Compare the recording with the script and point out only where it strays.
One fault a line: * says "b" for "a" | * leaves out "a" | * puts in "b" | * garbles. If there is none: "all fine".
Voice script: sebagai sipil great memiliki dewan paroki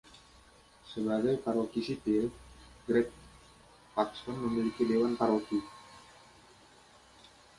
* puts in "paroki"
* puts in "paxton"